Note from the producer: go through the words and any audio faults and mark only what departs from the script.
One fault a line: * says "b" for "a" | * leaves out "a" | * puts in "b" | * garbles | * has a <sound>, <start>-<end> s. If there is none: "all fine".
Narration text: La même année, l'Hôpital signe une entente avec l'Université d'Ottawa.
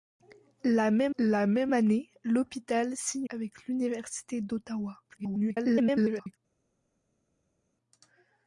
* puts in "la même"
* leaves out "une entente"
* garbles